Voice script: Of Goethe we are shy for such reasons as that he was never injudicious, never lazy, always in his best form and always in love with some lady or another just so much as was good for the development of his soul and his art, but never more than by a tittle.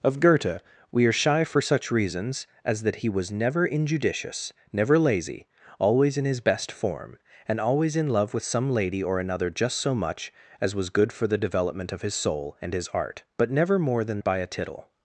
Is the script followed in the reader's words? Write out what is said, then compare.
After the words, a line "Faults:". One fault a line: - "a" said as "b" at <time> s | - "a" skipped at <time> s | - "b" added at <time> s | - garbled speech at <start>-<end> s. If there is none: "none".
Of Goethe we are shy for such reasons as that he was never injudicious, never lazy, always in his best form and always in love with some lady or another just so much as was good for the development of his soul and his art, but never more than by a tittle.
Faults:
none